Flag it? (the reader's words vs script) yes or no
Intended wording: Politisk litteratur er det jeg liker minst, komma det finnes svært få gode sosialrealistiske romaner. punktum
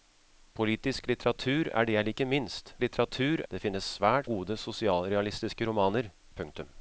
yes